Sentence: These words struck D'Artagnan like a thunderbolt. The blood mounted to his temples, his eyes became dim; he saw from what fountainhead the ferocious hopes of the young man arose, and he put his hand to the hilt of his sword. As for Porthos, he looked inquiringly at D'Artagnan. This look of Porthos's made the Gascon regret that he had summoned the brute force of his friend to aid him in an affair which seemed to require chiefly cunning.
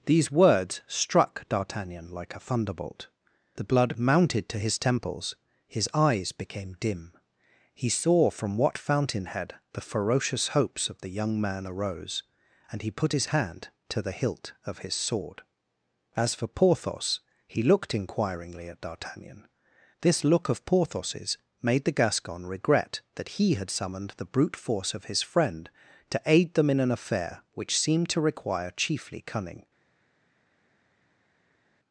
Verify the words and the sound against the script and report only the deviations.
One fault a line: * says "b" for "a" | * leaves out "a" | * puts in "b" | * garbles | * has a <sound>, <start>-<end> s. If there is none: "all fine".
* says "them" for "him"